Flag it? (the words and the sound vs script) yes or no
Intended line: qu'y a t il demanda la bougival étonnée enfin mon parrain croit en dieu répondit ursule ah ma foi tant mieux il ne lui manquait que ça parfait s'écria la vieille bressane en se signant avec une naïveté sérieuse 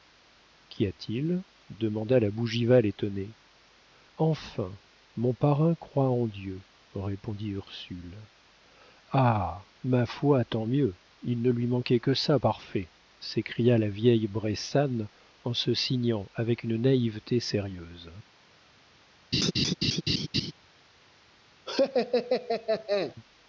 yes